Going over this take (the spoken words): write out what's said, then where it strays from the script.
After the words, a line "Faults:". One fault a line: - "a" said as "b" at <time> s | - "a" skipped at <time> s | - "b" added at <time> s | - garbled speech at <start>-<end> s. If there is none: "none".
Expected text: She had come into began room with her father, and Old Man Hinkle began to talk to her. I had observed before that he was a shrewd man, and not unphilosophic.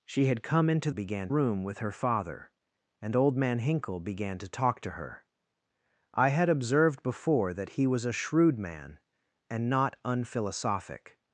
She had come into began room with her father, and Old Man Hinkle began to talk to her. I had observed before that he was a shrewd man, and not unphilosophic.
Faults:
none